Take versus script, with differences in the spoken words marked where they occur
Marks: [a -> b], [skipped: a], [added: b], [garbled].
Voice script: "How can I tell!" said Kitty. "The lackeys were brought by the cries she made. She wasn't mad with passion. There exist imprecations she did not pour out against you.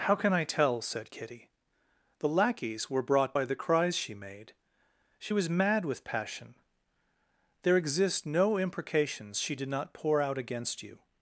"How can I tell!" said Kitty. "The lackeys were brought by the cries she made. She [wasn't -> was] mad with passion. There exist [added: no] imprecations she did not pour out against you.